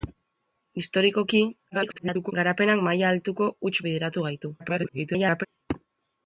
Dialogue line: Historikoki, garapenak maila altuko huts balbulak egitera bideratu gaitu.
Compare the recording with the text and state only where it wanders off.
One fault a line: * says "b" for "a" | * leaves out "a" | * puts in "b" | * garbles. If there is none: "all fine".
* garbles
* leaves out "balbulak egitera"
* garbles